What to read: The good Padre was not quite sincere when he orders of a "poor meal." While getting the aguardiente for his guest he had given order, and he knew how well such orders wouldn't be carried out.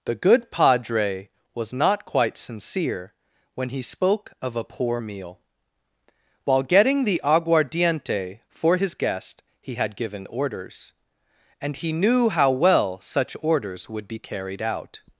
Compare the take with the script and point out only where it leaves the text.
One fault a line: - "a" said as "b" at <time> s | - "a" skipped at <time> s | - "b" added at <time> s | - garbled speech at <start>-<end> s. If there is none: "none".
- "orders" said as "spoke" at 3.8 s
- "order" said as "orders" at 10.3 s
- "wouldn't" said as "would" at 13.9 s